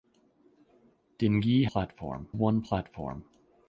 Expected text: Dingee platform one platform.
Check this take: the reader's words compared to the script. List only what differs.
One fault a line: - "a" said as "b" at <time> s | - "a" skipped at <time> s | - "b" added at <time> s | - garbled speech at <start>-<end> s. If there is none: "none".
none